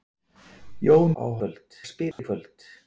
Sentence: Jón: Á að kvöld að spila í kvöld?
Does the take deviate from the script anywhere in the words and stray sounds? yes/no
yes